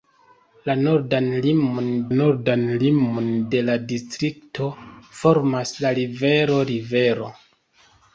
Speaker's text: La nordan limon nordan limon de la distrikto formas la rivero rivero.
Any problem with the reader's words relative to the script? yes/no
no